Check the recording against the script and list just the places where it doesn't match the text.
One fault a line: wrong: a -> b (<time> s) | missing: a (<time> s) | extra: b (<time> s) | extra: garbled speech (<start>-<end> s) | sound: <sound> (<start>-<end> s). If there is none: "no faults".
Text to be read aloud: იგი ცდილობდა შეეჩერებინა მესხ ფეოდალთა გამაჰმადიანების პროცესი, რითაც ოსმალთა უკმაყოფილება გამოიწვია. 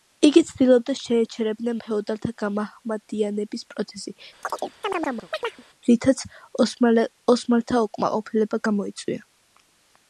missing: მესხ (1.8 s)
sound: chirp (4.4-5.6 s)